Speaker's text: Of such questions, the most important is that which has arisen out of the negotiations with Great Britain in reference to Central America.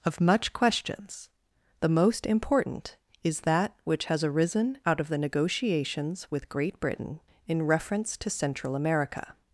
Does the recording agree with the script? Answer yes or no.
no